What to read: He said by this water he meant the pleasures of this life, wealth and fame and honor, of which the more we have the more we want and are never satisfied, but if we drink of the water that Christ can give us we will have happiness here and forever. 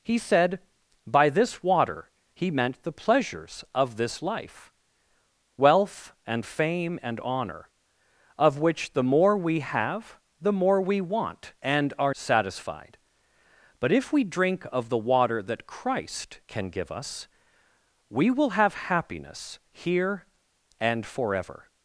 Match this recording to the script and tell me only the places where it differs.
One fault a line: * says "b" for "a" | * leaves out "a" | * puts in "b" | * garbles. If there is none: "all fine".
* leaves out "never"